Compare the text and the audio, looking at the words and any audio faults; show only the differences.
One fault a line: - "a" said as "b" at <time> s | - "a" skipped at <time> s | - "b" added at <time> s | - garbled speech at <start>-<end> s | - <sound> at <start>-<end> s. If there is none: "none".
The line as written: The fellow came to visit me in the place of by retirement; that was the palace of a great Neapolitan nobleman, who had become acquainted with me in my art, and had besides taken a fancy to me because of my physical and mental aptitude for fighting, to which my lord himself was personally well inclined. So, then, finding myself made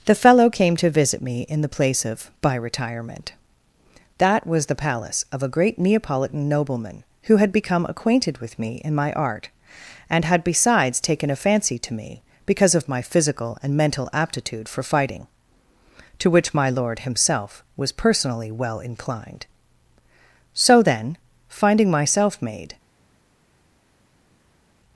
none